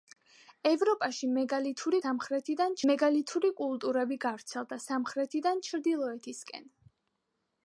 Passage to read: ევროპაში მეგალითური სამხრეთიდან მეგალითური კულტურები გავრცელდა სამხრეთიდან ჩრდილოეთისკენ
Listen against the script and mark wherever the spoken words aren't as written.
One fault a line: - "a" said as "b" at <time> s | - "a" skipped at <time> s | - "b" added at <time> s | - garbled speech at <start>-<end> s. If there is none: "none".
none